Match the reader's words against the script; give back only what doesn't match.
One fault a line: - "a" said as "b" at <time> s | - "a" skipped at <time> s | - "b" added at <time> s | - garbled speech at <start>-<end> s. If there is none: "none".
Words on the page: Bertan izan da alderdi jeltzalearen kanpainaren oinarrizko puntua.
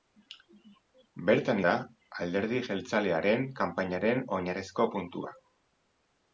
- "izan" skipped at 1.6 s